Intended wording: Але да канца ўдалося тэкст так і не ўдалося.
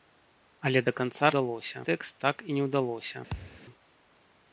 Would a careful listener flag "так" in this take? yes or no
no